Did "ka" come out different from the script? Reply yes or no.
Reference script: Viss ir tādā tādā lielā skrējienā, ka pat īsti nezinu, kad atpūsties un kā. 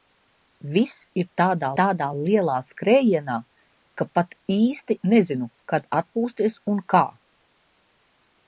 no